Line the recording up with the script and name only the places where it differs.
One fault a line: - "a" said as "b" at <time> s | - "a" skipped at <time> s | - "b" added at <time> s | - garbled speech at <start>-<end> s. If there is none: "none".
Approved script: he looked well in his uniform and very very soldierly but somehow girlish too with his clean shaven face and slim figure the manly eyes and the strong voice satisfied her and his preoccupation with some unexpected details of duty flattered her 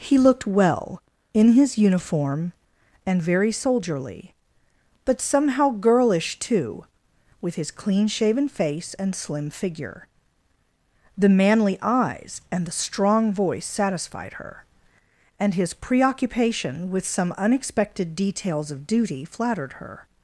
- "very" skipped at 3.5 s